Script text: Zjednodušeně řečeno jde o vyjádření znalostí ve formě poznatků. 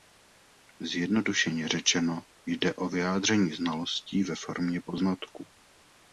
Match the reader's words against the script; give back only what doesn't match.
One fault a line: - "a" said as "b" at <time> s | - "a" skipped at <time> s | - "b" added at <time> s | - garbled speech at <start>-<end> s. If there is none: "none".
none